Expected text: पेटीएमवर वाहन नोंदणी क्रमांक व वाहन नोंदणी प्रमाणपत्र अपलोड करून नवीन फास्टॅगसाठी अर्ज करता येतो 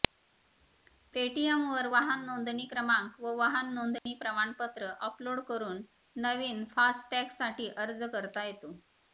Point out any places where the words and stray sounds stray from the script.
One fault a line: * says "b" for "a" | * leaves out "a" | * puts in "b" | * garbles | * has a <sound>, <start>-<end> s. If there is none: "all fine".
* has a dropout, 4.0-4.1 s